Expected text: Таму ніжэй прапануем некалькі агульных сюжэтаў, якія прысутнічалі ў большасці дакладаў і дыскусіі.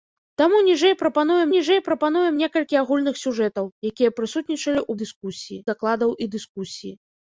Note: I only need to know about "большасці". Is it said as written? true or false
false